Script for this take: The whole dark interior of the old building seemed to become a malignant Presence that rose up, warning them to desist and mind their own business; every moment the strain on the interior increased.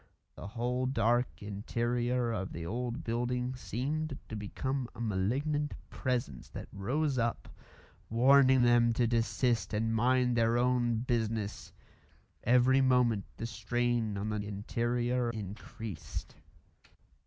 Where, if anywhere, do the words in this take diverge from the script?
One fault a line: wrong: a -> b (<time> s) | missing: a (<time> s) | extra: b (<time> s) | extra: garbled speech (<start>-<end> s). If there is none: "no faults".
no faults